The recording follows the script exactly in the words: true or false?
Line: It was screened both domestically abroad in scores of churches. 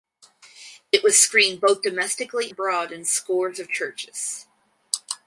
true